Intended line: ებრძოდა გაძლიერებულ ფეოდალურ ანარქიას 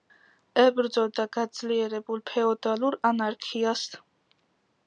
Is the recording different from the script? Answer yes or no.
no